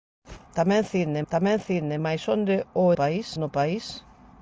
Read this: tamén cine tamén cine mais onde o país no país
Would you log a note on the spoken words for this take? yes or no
no